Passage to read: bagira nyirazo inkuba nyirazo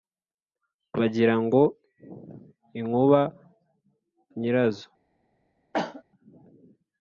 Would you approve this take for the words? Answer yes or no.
no